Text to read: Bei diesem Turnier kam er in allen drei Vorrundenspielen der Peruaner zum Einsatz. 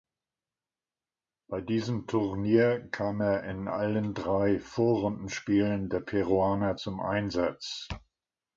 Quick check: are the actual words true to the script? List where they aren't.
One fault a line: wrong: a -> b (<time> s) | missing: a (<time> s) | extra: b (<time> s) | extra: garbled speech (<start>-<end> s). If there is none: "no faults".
no faults